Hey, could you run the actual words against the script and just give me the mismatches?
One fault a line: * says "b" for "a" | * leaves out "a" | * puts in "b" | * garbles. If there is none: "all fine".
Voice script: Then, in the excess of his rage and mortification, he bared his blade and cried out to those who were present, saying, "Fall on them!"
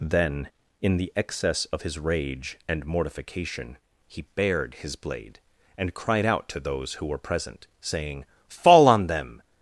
all fine